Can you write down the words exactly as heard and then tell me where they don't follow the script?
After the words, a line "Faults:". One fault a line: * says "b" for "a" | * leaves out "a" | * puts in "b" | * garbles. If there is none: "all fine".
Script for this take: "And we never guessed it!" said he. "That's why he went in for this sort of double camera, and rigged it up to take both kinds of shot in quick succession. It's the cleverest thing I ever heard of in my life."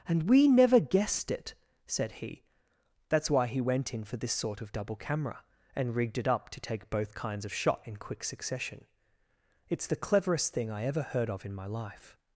"And we never guessed it!" said he. "That's why he went in for this sort of double camera, and rigged it up to take both kinds of shot in quick succession. It's the cleverest thing I ever heard of in my life."
Faults:
all fine